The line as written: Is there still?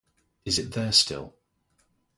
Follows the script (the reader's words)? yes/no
no